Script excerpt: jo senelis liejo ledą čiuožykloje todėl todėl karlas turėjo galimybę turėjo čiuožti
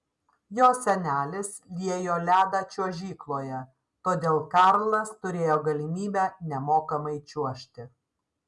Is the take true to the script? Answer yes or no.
no